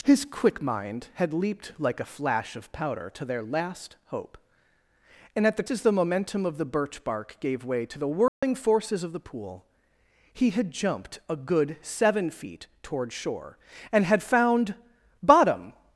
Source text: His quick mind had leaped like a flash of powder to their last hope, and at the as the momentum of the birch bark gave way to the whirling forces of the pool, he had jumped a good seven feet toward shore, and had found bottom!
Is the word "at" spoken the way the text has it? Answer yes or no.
yes